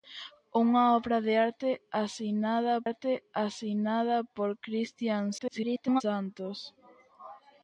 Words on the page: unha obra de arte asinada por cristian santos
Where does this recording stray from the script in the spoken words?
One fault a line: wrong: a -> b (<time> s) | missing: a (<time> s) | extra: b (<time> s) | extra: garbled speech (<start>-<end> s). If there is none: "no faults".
extra: arte asinada (2.9 s)
extra: garbled speech (5.4-6.0 s)